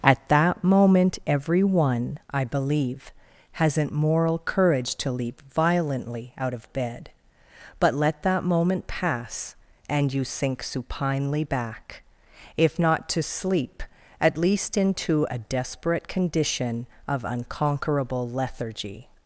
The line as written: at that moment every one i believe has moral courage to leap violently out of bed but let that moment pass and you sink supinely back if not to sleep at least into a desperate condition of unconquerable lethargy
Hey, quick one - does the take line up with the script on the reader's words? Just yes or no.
no